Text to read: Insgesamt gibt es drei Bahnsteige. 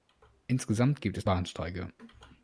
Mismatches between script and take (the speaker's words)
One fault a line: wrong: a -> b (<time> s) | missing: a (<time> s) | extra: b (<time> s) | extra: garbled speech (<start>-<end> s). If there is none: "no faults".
missing: drei (1.2 s)